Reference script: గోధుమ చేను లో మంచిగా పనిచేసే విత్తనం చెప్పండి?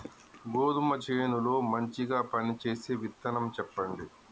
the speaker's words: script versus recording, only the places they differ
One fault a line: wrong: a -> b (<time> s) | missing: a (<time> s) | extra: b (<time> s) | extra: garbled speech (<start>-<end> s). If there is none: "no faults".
no faults